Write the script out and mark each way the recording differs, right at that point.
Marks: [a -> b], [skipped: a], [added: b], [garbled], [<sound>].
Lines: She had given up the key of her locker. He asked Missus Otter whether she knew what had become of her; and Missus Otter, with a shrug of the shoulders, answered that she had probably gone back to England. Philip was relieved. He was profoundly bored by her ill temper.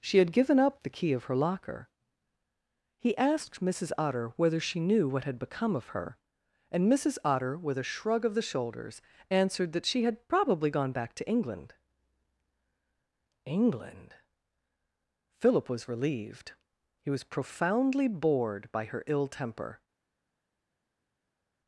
She had given up the key of her locker. He asked Missus Otter whether she knew what had become of her; and Missus Otter, with a shrug of the shoulders, answered that she had probably gone back to England. [added: England] Philip was relieved. He was profoundly bored by her ill temper.